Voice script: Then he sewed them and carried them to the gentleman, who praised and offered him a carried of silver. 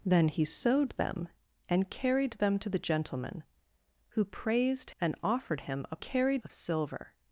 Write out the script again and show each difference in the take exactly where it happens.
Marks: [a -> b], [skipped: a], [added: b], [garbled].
Then he sewed them and carried them to the gentleman, who praised and offered him a carried of silver.